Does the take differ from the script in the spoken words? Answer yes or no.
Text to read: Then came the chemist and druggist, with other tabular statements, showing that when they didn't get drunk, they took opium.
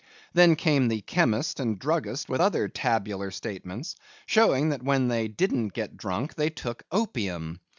no